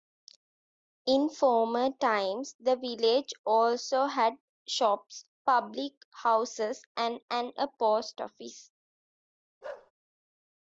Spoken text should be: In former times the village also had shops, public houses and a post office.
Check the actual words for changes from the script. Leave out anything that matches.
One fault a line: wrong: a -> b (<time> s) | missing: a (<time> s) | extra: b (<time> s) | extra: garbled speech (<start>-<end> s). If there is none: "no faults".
extra: and (7.3 s)